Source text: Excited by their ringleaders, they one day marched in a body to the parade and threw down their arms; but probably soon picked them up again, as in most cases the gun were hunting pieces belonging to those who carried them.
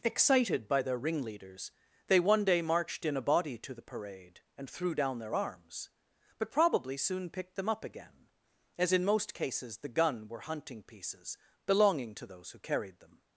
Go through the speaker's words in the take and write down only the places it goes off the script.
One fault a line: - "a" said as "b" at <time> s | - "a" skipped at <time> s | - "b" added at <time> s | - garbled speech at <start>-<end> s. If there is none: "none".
none